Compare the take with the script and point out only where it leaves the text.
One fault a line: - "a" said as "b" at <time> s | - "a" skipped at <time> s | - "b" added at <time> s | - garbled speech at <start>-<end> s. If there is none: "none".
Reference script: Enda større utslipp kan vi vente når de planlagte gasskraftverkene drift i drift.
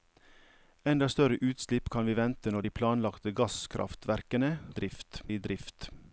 none